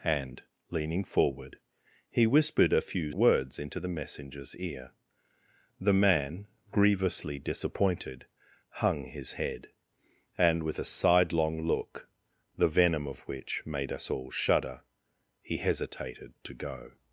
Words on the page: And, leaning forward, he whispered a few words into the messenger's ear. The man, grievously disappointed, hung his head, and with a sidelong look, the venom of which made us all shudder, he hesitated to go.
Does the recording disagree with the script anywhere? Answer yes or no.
no